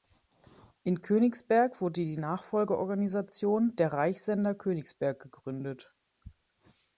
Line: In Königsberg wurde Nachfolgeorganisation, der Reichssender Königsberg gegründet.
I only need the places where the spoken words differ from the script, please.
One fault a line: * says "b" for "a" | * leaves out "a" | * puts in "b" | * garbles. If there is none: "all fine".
* puts in "die"